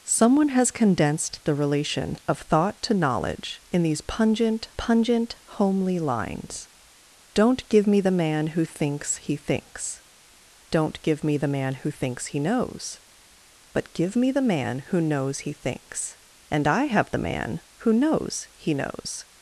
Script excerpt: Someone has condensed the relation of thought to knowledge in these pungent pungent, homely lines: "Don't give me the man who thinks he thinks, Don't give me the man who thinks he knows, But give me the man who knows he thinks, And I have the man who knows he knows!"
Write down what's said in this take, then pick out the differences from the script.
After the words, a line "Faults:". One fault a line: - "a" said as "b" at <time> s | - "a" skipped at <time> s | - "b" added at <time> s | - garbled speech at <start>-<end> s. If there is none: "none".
Someone has condensed the relation of thought to knowledge in these pungent pungent, homely lines: "Don't give me the man who thinks he thinks, Don't give me the man who thinks he knows, But give me the man who knows he thinks, And I have the man who knows he knows!"
Faults:
none